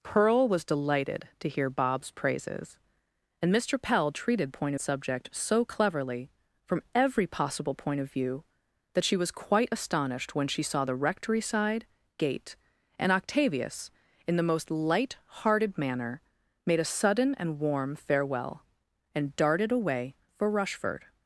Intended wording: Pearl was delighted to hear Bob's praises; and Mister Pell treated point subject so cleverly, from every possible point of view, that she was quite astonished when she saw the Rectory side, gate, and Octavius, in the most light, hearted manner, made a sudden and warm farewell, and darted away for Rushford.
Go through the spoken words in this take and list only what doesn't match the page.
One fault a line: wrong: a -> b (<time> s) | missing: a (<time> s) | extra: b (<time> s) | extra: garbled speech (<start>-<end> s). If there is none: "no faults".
no faults